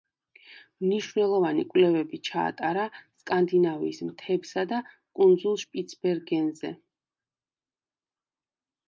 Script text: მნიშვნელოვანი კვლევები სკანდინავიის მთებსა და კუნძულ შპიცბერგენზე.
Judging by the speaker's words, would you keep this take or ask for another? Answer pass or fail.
fail